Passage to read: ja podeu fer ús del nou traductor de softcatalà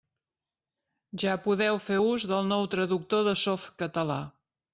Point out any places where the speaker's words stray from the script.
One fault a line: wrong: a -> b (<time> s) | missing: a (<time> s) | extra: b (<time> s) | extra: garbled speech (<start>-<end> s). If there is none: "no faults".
no faults